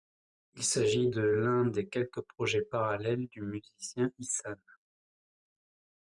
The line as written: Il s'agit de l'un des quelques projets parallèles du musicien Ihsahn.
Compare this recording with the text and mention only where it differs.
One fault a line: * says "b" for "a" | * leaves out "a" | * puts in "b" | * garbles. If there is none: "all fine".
all fine